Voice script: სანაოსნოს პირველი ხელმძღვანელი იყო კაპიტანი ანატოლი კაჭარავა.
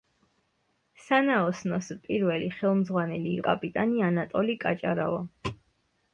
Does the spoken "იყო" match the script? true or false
false